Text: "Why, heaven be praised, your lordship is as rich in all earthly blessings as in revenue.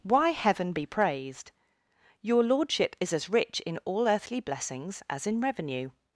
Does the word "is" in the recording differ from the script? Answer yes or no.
no